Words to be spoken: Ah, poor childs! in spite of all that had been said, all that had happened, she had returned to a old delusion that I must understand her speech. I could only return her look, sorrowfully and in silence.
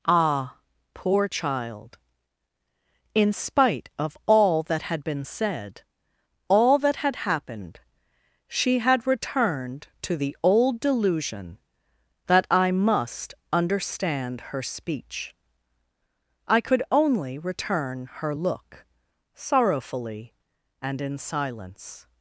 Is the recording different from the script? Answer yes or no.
yes